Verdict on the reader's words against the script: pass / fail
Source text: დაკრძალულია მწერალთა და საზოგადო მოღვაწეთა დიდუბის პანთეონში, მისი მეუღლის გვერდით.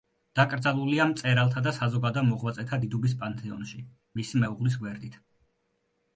pass